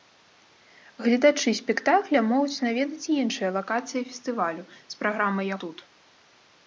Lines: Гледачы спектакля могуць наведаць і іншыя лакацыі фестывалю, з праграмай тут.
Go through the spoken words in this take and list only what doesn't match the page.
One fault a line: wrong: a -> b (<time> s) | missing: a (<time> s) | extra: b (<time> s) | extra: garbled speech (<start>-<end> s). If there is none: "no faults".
no faults